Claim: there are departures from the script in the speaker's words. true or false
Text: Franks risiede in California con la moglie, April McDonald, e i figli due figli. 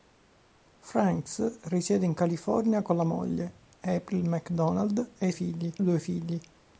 false